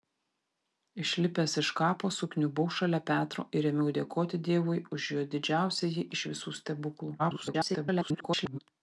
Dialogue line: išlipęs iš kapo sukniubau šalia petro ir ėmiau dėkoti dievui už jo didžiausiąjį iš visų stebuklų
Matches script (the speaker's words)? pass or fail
fail